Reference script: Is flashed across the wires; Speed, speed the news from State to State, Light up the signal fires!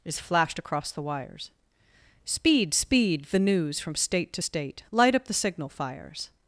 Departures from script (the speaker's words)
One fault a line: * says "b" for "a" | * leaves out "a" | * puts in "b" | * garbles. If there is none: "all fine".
all fine